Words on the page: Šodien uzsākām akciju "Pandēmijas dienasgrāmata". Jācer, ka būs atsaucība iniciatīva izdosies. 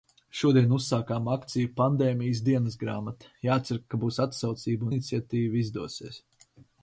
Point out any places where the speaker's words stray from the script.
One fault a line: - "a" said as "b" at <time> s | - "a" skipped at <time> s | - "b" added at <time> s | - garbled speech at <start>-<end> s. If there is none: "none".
none